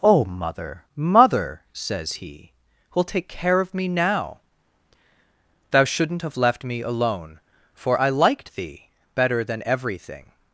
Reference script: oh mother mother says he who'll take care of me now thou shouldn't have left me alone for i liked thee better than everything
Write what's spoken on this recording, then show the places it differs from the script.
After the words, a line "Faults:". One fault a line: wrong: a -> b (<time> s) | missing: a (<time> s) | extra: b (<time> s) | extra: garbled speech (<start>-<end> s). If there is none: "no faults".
oh mother mother says he who'll take care of me now thou shouldn't have left me alone for i liked thee better than everything
Faults:
no faults